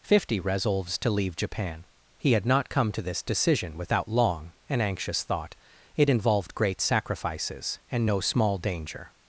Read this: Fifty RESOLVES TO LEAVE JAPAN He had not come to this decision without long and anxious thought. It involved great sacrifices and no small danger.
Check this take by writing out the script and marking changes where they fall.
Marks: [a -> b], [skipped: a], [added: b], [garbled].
Fifty RESOLVES TO LEAVE JAPAN He had not come to this decision without long and anxious thought. It involved great sacrifices and no small danger.